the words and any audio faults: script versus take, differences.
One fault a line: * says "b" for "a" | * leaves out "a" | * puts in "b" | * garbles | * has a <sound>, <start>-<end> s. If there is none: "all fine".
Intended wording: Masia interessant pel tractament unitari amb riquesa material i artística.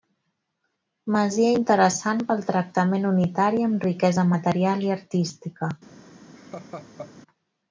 * has a laugh, 6.4-7.1 s